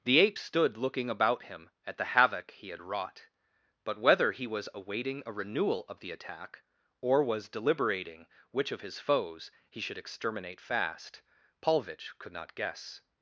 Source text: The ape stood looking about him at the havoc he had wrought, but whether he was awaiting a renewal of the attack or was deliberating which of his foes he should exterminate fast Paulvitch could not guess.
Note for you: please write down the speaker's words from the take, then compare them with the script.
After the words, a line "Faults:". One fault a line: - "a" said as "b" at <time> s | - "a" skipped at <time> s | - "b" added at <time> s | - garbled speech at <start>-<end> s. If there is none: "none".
The ape stood looking about him at the havoc he had wrought, but whether he was awaiting a renewal of the attack or was deliberating which of his foes he should exterminate fast Paulvitch could not guess.
Faults:
none